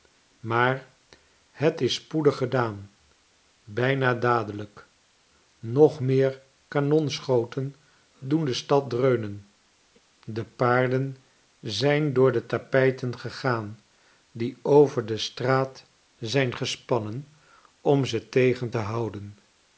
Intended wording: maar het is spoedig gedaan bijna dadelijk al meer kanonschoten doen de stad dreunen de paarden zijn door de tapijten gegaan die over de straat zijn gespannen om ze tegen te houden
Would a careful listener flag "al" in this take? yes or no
yes